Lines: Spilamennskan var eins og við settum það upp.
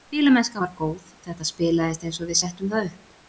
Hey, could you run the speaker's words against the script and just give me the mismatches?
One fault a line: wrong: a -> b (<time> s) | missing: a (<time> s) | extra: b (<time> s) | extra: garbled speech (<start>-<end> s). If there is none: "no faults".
extra: góð þetta spilaðist (0.8 s)